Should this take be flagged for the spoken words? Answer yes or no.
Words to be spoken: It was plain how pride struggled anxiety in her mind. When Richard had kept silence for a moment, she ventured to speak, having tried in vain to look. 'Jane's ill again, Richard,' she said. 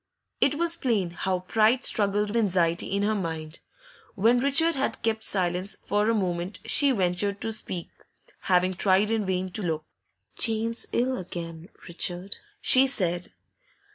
no